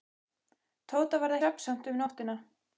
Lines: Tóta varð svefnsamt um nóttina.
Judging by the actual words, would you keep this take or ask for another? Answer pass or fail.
pass